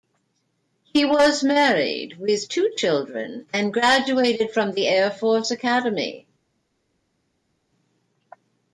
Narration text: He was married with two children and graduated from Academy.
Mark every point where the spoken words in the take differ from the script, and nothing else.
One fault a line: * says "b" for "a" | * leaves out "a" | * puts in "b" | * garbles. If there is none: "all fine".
* puts in "the Air Force"